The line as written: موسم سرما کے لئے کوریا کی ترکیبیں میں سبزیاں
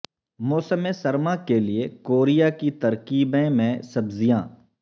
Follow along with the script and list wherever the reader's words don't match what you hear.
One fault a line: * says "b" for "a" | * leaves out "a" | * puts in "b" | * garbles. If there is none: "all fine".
all fine